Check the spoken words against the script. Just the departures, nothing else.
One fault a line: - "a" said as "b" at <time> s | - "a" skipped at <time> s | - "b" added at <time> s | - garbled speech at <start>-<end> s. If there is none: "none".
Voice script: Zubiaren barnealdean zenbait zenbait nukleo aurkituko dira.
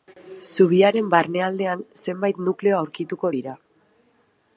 - "zenbait" skipped at 2.4 s